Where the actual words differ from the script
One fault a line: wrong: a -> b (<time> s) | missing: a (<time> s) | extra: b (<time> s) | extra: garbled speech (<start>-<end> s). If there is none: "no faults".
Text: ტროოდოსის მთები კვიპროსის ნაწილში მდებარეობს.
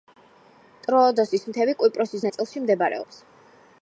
no faults